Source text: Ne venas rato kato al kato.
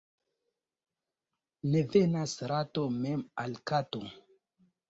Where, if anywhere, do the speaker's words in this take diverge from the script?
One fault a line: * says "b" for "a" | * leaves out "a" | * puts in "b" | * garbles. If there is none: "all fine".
* says "mem" for "kato"